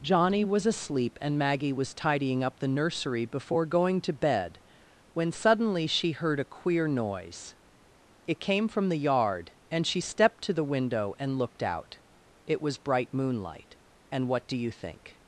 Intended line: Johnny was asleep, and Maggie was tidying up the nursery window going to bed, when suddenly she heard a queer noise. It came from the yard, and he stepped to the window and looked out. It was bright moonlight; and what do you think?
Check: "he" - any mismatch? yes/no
yes